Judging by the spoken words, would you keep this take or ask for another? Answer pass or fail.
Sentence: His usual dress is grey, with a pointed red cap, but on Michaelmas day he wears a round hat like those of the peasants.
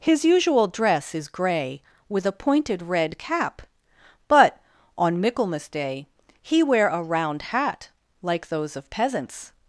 fail